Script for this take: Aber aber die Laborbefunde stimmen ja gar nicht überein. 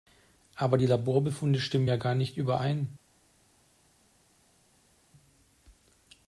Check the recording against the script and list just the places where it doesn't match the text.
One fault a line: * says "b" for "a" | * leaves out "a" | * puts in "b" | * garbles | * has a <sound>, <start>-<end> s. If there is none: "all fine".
* leaves out "aber"